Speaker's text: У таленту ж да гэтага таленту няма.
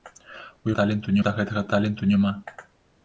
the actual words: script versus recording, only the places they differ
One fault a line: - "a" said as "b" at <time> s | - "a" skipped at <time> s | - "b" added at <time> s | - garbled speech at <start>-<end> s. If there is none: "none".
none